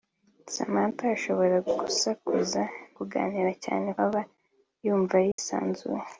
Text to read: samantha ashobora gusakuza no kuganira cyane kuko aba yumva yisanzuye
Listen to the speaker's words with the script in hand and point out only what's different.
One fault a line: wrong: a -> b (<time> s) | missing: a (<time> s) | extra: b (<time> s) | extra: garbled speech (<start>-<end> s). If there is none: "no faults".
missing: no (2.6 s)
missing: kuko (3.9 s)